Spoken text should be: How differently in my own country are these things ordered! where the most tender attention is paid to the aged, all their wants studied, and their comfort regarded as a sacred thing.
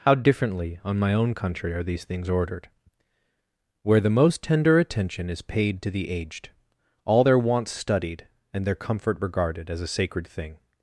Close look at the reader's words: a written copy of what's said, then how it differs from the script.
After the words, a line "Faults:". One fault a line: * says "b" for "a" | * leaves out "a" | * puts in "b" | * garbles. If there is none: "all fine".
How differently on my own country are these things ordered! where the most tender attention is paid to the aged, all their wants studied, and their comfort regarded as a sacred thing.
Faults:
* says "on" for "in"